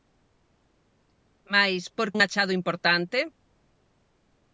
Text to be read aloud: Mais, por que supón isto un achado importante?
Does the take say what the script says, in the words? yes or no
no